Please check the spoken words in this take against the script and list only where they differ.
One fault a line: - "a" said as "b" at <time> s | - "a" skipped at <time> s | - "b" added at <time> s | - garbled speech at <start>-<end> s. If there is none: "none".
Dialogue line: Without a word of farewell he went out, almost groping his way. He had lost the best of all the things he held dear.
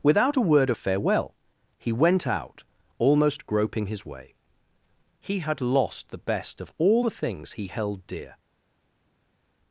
none